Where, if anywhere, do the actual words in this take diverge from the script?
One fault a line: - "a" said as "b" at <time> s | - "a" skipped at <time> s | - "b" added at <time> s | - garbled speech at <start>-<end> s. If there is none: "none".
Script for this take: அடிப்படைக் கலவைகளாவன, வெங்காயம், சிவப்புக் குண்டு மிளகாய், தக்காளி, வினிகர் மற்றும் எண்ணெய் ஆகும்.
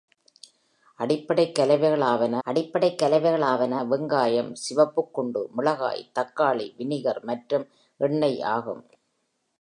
- "அடிப்படைக் கலவைகளாவன" added at 2.5 s